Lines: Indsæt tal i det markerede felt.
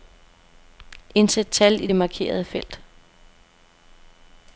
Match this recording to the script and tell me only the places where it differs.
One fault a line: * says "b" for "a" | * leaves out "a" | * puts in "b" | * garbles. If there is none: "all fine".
all fine